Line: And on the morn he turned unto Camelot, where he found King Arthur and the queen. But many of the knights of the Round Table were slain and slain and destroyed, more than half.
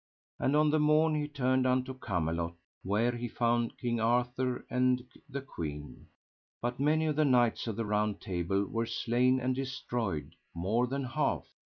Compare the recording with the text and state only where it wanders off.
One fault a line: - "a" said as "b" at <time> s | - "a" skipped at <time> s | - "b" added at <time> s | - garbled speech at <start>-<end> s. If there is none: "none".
- "slain and" skipped at 9.5 s